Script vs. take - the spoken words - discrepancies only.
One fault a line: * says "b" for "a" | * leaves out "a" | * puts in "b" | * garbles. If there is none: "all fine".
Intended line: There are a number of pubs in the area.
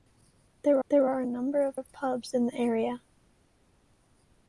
* puts in "there"
* puts in "of"